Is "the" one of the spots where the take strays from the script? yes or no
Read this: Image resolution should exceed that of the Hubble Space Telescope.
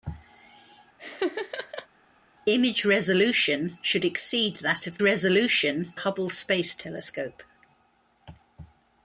yes